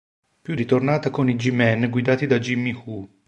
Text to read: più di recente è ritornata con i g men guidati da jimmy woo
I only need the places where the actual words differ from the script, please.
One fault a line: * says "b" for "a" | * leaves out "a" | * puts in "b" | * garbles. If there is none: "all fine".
* leaves out "di recente"